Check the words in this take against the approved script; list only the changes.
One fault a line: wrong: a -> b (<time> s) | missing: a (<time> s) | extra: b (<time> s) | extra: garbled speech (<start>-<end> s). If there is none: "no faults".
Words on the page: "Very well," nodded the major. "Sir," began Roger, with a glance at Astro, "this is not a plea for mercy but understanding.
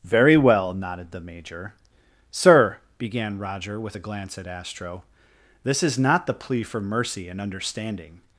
wrong: a -> the (6.3 s)
wrong: but -> and (7.3 s)